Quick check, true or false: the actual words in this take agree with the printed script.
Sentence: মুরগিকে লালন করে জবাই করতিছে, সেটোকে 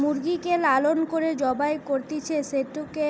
true